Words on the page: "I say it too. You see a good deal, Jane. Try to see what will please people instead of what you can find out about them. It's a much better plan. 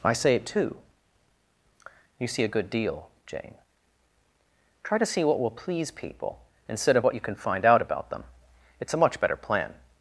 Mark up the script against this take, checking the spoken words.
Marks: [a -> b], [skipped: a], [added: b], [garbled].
"I say it too. You see a good deal, Jane. Try to see what will please people instead of what you can find out about them. It's a much better plan.